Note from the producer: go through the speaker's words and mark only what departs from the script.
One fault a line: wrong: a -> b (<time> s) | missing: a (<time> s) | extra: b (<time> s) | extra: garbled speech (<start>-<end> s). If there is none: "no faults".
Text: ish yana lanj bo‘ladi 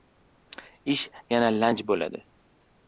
no faults